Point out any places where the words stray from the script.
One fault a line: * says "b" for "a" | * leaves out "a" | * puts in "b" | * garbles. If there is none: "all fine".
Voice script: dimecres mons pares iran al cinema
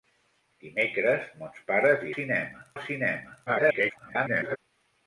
* says "cinema" for "iran"
* garbles